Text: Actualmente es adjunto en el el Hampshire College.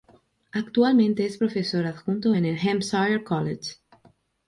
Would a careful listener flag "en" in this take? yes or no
no